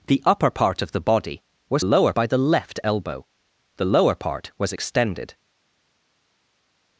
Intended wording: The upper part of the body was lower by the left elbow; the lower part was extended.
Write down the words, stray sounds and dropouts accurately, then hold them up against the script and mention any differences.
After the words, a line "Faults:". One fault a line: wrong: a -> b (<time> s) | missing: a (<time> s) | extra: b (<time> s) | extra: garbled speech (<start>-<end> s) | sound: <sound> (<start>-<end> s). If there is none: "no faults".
The upper part of the body was lower by the left elbow; the lower part was extended.
Faults:
no faults